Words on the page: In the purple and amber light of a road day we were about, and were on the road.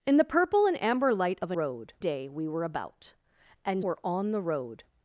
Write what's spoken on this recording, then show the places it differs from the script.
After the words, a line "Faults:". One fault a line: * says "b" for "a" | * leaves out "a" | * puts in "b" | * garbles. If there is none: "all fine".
In the purple and amber light of a road day we were about, and were on the road.
Faults:
all fine